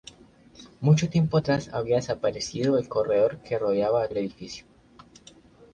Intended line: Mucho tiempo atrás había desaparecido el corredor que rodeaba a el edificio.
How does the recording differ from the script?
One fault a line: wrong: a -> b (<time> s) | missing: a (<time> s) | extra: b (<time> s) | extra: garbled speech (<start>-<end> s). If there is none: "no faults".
no faults